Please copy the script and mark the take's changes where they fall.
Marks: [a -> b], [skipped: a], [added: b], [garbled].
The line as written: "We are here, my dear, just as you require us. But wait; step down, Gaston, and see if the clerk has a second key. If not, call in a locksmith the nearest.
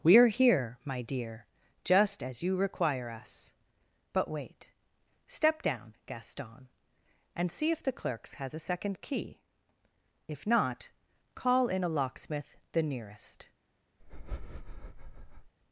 "We are here, my dear, just as you require us. But wait; step down, Gaston, and see if the [clerk -> clerks] has a second key. If not, call in a locksmith the nearest.